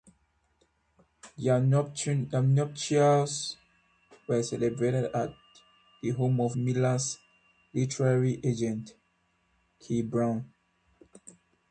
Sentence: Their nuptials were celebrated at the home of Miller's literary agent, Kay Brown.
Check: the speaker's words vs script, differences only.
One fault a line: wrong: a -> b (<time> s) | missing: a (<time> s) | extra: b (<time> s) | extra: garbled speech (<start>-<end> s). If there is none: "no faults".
no faults